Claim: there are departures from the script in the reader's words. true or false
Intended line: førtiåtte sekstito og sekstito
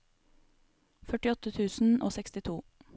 true